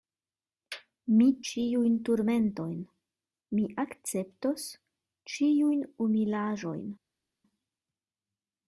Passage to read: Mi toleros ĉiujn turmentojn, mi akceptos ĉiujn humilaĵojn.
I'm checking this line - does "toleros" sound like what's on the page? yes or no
no